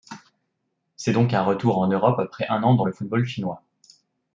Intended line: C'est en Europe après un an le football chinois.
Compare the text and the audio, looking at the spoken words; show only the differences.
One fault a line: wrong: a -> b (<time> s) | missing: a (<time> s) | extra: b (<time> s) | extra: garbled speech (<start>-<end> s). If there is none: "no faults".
extra: donc un retour (1.1 s)
extra: dans (2.7 s)